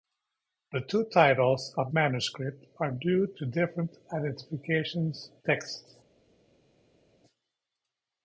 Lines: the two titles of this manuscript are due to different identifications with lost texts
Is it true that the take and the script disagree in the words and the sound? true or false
true